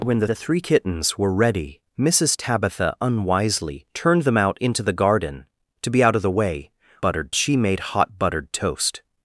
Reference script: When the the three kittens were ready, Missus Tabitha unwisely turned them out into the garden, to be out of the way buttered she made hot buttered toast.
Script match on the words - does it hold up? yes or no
yes